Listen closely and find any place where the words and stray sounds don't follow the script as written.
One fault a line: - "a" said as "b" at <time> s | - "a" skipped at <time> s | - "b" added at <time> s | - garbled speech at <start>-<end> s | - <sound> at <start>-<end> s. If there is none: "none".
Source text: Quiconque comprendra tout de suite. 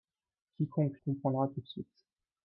none